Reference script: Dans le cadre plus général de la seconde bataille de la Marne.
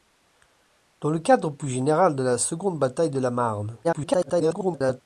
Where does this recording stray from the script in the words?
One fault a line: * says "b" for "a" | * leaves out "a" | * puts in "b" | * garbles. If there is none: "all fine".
* garbles